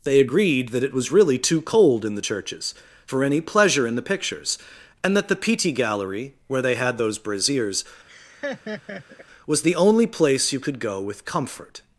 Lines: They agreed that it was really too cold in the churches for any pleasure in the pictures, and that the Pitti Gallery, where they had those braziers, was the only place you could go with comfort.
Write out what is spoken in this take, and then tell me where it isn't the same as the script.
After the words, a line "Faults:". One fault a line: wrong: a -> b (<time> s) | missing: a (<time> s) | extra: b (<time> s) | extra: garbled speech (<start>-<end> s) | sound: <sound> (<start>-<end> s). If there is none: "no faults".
They agreed that it was really too cold in the churches for any pleasure in the pictures, and that the Pitti Gallery, where they had those braziers, was the only place you could go with comfort.
Faults:
sound: laugh (8.1-9.3 s)